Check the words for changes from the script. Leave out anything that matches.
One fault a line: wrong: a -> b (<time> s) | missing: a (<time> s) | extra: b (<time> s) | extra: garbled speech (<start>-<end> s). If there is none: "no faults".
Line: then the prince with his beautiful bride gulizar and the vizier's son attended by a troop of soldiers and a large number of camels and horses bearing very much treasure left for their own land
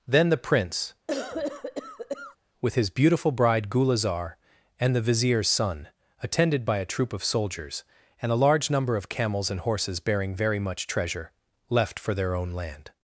no faults